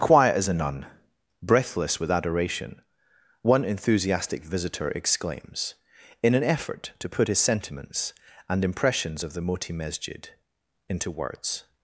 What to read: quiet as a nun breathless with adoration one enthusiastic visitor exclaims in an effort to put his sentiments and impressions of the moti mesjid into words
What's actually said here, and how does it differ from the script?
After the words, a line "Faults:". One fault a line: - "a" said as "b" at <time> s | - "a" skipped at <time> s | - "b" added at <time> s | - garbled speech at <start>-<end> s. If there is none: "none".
quiet as a nun breathless with adoration one enthusiastic visitor exclaims in an effort to put his sentiments and impressions of the moti mesjid into words
Faults:
none